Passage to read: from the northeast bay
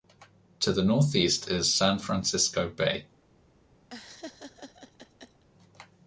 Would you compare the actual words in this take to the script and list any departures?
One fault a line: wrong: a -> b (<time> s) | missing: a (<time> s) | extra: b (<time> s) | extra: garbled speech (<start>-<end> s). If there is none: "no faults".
wrong: from -> to (0.6 s)
extra: is san francisco (1.5 s)